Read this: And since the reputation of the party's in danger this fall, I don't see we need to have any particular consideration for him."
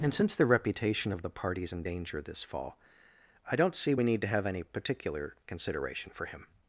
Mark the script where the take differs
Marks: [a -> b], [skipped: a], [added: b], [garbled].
And since the reputation of the party's in danger this fall, I don't see we need to have any particular consideration for him."